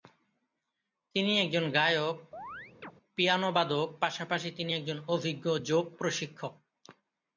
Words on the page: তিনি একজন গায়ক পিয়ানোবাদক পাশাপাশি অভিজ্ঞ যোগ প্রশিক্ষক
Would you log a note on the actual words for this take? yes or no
yes